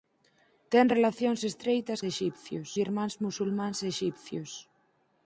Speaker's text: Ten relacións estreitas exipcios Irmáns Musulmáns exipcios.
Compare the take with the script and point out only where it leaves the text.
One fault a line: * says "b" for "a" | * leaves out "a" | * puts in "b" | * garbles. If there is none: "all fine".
all fine